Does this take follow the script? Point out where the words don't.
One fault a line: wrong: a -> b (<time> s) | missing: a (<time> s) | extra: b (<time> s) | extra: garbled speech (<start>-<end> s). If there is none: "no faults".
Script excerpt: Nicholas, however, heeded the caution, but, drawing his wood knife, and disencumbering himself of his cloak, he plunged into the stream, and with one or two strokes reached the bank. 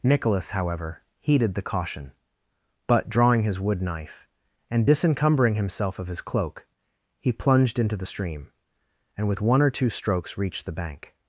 no faults